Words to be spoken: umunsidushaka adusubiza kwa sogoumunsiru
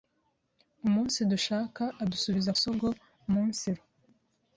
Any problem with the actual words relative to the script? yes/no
yes